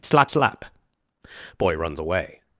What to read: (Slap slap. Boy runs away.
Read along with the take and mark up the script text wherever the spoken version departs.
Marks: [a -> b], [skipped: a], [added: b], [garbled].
(Slap slap. Boy runs away.